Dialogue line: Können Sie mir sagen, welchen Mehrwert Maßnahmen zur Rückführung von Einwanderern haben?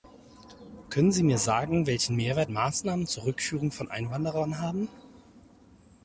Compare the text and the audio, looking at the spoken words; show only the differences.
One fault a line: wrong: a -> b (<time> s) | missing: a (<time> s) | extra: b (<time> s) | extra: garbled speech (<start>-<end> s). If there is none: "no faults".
no faults